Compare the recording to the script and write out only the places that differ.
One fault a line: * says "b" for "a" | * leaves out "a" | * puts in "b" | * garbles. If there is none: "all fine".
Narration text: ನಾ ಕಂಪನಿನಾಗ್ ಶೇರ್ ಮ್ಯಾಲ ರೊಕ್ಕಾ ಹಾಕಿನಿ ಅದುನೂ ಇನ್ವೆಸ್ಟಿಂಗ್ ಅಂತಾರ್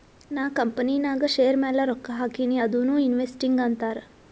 all fine